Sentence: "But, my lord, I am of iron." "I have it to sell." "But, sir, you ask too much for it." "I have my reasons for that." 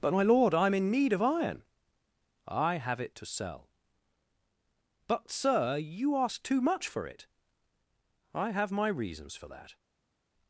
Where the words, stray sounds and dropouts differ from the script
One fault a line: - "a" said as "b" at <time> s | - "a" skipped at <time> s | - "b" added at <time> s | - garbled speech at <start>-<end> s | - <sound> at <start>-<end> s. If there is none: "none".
- "in need" added at 0.7 s